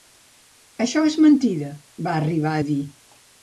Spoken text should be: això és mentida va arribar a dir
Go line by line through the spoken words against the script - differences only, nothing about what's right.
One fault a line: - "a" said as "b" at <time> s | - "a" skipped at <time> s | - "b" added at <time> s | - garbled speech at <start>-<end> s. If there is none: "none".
none